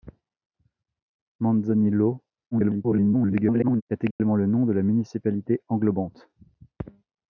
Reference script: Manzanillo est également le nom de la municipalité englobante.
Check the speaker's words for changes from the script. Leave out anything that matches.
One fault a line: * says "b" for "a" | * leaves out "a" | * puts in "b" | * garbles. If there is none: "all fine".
* garbles